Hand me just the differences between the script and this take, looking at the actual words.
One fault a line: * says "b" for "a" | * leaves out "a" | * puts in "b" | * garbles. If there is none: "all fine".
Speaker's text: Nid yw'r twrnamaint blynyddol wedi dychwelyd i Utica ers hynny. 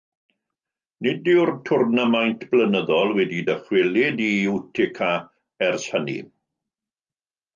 all fine